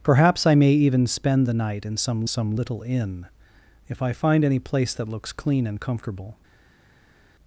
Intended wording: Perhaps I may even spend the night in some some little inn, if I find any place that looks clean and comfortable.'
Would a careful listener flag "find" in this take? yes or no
no